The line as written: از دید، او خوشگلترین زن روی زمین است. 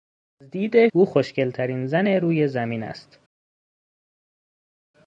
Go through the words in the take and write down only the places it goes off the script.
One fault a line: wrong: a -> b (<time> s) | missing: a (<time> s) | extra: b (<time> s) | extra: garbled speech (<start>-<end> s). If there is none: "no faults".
no faults